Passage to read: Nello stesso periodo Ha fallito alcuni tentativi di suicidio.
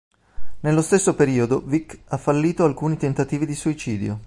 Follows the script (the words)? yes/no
no